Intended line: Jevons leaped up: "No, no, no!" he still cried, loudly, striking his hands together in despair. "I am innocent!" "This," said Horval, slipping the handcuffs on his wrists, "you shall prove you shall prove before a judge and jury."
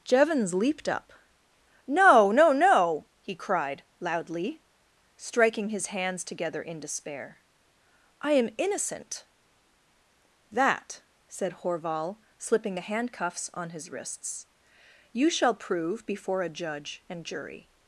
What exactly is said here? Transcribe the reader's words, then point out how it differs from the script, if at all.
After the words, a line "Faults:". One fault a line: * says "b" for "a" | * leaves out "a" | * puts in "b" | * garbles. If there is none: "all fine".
Jevons leaped up: "No, no, no!" he cried, loudly, striking his hands together in despair. "I am innocent!" "That," said Horval, slipping the handcuffs on his wrists, "you shall prove before a judge and jury."
Faults:
* leaves out "still"
* says "That" for "This"
* leaves out "you shall prove"